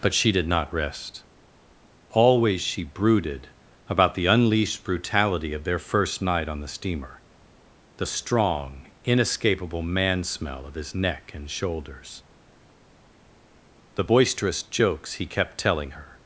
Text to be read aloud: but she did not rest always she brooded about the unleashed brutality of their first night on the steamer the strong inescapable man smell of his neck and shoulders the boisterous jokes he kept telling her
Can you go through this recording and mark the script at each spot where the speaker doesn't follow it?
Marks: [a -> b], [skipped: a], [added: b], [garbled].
but she did not rest always she brooded about the unleashed brutality of their first night on the steamer the strong inescapable man smell of his neck and shoulders the boisterous jokes he kept telling her